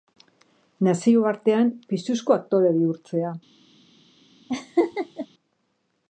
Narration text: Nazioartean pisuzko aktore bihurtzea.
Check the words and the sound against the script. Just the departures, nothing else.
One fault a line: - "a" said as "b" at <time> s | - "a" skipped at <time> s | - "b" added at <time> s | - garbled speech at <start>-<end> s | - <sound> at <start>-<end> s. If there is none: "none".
- laugh at 4.5-5.3 s